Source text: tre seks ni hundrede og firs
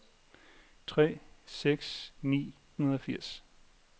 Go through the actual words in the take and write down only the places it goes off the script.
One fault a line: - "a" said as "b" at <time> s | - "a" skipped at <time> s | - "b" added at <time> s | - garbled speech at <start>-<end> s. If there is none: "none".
none